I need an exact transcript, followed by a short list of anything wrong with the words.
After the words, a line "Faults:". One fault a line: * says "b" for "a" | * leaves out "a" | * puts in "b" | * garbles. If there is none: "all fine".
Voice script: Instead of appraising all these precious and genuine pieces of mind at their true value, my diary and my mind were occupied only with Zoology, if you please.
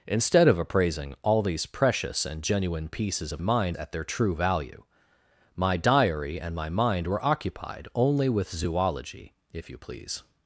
Instead of appraising all these precious and genuine pieces of mind at their true value, my diary and my mind were occupied only with Zoology, if you please.
Faults:
all fine